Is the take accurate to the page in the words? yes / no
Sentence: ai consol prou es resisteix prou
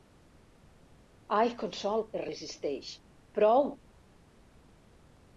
no